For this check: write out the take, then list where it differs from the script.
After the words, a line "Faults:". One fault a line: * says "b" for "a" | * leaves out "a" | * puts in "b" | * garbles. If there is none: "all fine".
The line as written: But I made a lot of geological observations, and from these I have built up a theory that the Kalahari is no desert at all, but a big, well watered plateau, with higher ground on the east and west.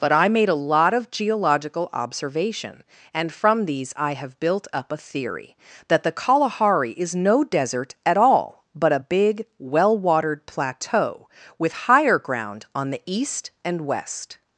But I made a lot of geological observation, and from these I have built up a theory that the Kalahari is no desert at all, but a big, well watered plateau, with higher ground on the east and west.
Faults:
* says "observation" for "observations"